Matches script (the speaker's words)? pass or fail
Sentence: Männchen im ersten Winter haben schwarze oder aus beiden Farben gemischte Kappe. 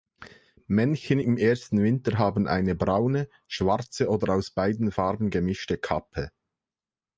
fail